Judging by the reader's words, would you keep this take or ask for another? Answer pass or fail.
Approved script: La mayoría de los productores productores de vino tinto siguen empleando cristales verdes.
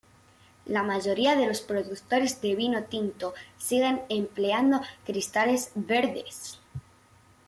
fail